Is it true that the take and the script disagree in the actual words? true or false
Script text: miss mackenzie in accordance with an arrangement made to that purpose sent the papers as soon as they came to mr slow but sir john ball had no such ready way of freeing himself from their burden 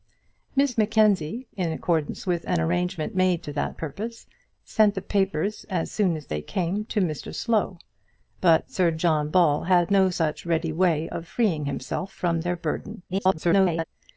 true